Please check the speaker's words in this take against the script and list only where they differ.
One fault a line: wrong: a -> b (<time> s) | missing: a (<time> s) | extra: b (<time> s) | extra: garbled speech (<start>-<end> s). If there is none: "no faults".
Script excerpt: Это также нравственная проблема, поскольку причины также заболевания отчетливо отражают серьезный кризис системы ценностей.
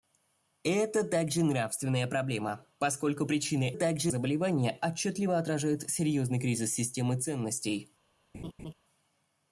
no faults